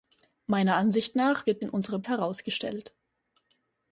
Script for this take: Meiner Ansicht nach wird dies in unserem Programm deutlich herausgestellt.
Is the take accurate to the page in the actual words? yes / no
no